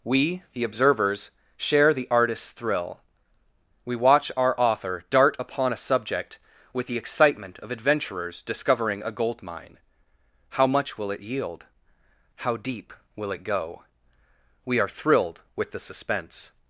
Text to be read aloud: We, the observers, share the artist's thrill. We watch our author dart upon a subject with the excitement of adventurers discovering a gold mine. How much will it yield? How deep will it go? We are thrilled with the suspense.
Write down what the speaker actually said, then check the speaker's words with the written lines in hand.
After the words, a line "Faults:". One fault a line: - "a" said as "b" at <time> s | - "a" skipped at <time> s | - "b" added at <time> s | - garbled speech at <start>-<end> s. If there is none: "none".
We, the observers, share the artist's thrill. We watch our author dart upon a subject with the excitement of adventurers discovering a gold mine. How much will it yield? How deep will it go? We are thrilled with the suspense.
Faults:
none